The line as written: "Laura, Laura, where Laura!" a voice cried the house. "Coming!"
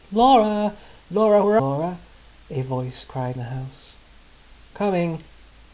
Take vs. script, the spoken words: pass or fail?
pass